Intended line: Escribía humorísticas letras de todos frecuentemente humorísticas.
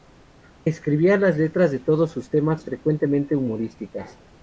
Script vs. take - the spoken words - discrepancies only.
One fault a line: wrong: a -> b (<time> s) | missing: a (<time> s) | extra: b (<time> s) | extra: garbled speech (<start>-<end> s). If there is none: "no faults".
wrong: humorísticas -> las (1.1 s)
extra: sus temas (2.1 s)